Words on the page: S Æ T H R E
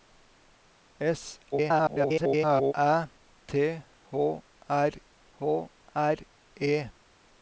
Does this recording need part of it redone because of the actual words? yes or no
yes